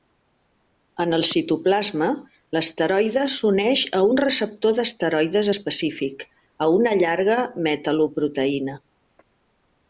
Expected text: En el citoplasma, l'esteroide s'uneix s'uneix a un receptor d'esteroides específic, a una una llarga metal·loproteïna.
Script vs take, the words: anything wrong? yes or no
yes